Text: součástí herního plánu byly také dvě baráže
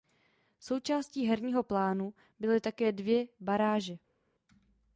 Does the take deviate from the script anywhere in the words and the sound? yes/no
no